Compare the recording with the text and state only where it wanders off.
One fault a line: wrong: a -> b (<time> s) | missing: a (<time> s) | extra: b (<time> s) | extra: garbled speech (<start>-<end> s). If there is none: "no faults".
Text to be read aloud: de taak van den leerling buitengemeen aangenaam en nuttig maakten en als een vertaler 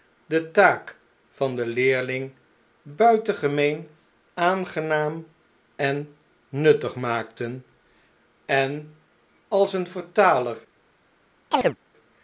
no faults